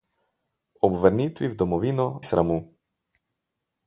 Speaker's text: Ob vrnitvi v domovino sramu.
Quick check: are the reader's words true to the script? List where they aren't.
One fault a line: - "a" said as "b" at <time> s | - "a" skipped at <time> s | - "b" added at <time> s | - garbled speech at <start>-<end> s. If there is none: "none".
none